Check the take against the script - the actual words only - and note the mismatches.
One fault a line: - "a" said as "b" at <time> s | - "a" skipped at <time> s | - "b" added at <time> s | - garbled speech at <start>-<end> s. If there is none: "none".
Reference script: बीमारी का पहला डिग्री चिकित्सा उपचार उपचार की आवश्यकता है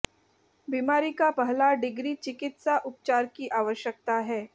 - "उपचार" skipped at 3.3 s